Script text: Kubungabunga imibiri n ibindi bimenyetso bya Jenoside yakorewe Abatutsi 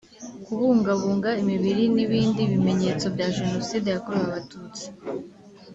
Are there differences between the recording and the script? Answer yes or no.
no